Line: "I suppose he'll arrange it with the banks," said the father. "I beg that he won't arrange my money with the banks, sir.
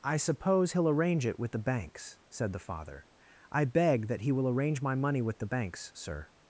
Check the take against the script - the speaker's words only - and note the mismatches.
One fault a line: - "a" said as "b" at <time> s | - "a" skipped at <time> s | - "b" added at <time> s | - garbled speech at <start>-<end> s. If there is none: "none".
- "won't" said as "will" at 4.3 s